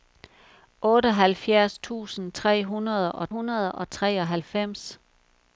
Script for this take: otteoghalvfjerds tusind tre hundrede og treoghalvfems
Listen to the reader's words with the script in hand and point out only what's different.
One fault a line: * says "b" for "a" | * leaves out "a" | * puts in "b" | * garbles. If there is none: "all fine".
* puts in "hundrede og"